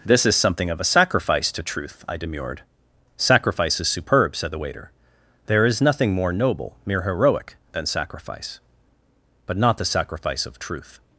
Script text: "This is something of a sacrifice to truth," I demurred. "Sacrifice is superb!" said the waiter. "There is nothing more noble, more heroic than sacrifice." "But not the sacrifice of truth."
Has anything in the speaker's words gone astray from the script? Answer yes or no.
yes